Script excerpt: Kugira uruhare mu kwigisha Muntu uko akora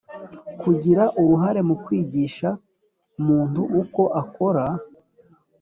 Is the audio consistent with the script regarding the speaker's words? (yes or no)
yes